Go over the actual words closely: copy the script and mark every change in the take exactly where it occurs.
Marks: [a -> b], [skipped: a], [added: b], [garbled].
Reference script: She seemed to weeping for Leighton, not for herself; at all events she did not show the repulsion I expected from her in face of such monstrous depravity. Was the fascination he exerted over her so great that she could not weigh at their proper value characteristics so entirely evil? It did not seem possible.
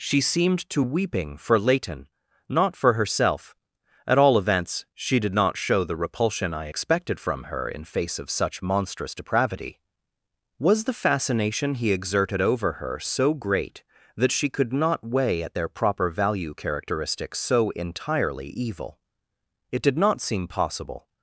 She seemed to weeping for Leighton, not for herself; at all events she did not show the repulsion I expected from her in face of such monstrous depravity. Was the fascination he exerted over her so great that she could not weigh at their proper value characteristics so entirely evil? It did not seem possible.